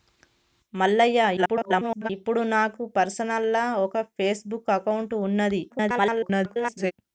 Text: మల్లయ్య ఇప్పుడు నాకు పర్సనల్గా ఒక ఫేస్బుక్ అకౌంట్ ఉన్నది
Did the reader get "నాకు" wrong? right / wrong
right